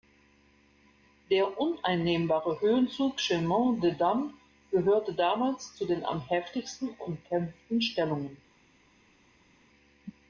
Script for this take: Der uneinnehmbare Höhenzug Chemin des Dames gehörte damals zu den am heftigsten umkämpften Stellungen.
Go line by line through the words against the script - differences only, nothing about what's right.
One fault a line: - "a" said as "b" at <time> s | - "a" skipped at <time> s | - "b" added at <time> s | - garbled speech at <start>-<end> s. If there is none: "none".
none